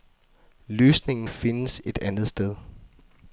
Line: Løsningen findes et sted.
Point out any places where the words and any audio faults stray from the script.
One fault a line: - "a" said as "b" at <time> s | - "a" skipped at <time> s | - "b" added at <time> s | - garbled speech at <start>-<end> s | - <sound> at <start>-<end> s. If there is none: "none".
- "andet" added at 2.0 s